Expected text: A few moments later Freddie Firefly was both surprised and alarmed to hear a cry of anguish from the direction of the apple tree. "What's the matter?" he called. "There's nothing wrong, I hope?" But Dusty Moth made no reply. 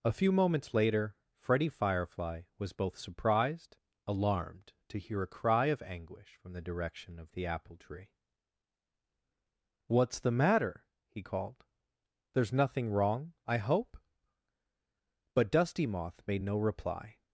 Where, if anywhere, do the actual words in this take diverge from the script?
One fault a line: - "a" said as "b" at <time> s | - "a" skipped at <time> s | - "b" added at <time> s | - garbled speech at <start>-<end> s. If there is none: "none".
- "and" skipped at 3.8 s